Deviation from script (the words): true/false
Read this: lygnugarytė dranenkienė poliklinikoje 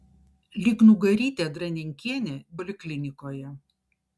false